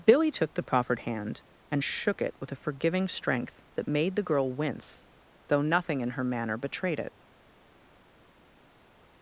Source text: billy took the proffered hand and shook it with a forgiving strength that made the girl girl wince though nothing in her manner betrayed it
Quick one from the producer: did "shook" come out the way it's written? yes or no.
yes